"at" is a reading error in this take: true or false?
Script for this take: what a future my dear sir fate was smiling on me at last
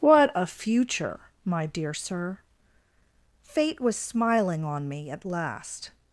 false